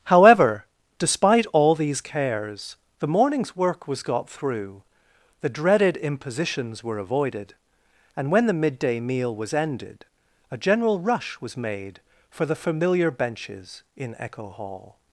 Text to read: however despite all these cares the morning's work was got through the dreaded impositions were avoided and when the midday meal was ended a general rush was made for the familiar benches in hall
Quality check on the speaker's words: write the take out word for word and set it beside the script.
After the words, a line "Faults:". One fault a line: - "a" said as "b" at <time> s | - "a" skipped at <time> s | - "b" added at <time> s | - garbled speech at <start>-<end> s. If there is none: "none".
however despite all these cares the morning's work was got through the dreaded impositions were avoided and when the midday meal was ended a general rush was made for the familiar benches in echo hall
Faults:
- "echo" added at 14.2 s